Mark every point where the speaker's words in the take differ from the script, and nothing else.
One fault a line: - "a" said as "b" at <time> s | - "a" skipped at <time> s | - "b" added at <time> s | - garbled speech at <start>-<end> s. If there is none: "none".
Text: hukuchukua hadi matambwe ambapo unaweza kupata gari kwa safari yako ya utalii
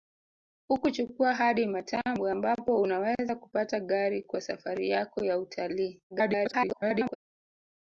- garbled speech at 6.1-7.2 s